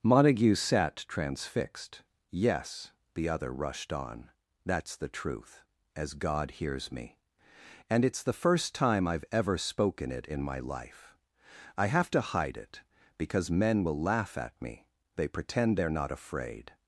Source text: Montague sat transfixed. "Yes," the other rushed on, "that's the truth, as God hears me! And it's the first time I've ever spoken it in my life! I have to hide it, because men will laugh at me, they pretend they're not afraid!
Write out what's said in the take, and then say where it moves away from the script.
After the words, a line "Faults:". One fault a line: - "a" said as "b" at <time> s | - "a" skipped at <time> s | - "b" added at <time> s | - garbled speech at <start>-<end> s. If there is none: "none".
Montague sat transfixed. "Yes," the other rushed on, "that's the truth, as God hears me! And it's the first time I've ever spoken it in my life! I have to hide it, because men will laugh at me, they pretend they're not afraid!
Faults:
none